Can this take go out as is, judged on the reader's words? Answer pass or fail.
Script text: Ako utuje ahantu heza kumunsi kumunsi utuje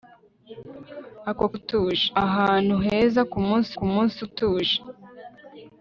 pass